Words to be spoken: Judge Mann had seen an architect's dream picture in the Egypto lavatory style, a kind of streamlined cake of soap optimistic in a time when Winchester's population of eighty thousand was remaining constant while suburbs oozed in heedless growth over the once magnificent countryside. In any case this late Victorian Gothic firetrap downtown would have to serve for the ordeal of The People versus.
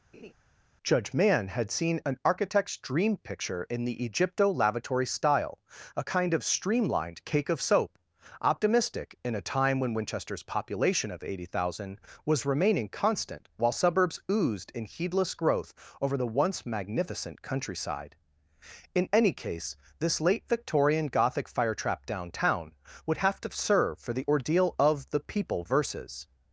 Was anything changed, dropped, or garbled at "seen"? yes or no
no